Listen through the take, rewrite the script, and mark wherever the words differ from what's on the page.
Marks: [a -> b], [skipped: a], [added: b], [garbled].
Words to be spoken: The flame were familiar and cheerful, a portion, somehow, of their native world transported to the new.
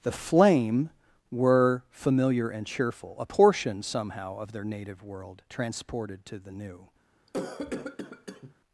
The flame were familiar and cheerful, a portion, somehow, of their native world transported to the new.